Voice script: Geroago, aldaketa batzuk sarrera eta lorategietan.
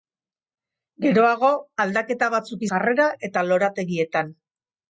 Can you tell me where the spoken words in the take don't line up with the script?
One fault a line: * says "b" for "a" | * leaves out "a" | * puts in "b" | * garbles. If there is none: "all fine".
all fine